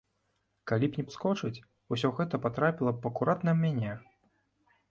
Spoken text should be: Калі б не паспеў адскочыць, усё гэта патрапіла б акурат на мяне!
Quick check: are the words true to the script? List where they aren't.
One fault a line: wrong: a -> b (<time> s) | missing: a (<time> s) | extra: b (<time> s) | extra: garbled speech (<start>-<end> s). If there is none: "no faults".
missing: паспеў (1.0 s)